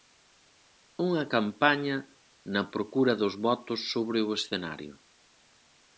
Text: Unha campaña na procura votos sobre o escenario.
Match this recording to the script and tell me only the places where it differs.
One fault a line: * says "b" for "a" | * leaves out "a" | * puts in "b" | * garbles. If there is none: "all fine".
* puts in "dos"